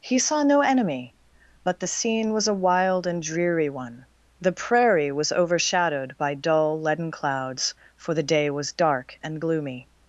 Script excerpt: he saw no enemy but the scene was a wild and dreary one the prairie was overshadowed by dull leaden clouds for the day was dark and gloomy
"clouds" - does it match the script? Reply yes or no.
yes